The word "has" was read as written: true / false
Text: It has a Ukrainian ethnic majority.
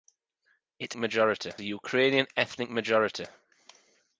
false